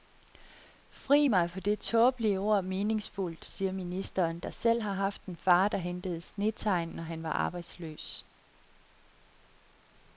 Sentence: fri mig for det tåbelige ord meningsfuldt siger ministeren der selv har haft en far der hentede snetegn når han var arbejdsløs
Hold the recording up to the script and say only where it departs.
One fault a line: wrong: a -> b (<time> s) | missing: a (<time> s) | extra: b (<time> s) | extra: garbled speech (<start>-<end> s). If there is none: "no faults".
no faults